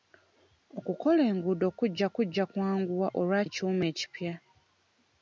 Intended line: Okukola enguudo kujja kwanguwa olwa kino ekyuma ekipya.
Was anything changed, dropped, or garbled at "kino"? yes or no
yes